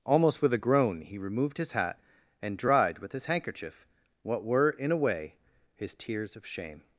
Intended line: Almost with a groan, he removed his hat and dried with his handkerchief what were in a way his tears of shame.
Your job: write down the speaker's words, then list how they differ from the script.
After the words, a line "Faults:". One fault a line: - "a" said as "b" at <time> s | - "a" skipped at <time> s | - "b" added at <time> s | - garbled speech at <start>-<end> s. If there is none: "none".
Almost with a groan, he removed his hat and dried with his handkerchief what were in a way his tears of shame.
Faults:
none